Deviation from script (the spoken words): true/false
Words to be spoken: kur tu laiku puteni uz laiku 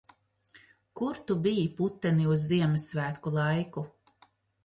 true